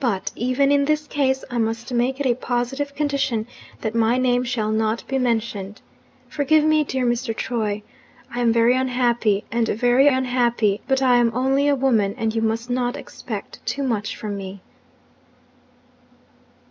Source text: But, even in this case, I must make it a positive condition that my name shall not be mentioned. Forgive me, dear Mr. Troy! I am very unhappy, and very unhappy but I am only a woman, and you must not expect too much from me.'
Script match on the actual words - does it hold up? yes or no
yes